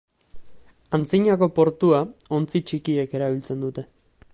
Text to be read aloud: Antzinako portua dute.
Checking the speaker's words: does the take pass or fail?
fail